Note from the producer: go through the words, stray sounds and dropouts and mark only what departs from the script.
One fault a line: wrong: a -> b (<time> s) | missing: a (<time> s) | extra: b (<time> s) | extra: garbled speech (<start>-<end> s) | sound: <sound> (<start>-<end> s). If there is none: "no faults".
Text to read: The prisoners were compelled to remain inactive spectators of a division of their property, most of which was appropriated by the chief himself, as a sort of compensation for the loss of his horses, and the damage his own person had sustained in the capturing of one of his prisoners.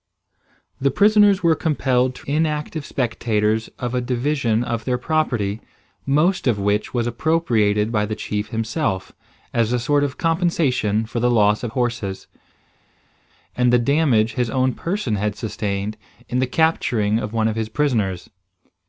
missing: remain (2.3 s)
missing: his (11.7 s)